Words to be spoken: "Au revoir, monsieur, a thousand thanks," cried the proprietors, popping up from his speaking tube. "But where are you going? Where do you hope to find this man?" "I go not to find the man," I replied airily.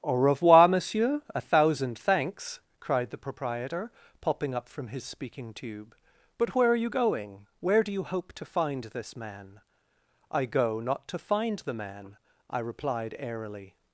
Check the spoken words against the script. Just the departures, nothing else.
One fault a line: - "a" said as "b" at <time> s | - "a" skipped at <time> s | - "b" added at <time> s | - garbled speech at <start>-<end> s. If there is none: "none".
- "proprietors" said as "proprietor" at 3.2 s